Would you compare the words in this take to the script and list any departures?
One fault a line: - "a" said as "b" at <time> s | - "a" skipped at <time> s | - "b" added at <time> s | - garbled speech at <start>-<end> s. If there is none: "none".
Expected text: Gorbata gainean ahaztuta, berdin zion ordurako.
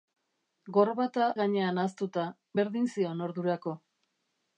none